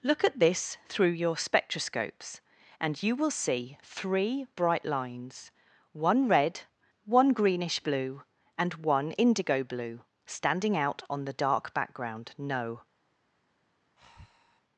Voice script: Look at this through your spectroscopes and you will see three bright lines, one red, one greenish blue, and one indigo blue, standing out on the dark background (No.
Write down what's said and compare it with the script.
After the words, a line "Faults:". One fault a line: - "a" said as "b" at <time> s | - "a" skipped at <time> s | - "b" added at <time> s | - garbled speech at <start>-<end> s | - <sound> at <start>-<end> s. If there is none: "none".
Look at this through your spectroscopes and you will see three bright lines, one red, one greenish blue, and one indigo blue, standing out on the dark background (No.
Faults:
- breath at 14.0-14.6 s